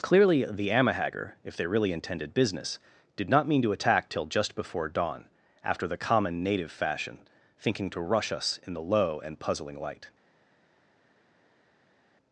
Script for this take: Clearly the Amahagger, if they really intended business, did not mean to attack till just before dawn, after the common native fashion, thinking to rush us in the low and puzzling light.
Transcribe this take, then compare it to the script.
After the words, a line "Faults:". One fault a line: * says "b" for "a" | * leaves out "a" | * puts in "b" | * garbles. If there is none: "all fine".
Clearly the Amahagger, if they really intended business, did not mean to attack till just before dawn, after the common native fashion, thinking to rush us in the low and puzzling light.
Faults:
all fine